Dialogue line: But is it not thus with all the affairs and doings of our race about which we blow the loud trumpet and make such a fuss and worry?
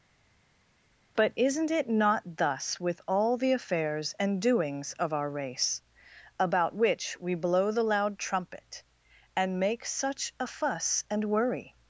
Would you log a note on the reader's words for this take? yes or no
yes